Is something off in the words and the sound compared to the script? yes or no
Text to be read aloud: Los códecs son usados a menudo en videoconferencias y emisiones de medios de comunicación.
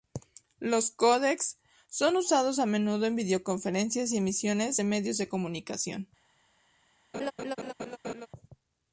yes